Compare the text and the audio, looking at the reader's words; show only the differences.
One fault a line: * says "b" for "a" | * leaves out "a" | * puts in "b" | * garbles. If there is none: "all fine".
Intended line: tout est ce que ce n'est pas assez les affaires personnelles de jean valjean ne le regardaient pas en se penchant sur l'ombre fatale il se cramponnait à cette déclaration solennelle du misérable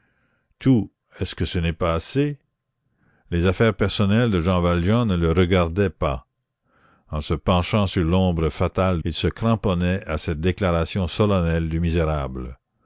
all fine